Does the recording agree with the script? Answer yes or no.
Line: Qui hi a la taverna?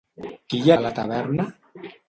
yes